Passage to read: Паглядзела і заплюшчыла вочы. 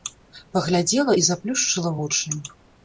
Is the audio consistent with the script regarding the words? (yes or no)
yes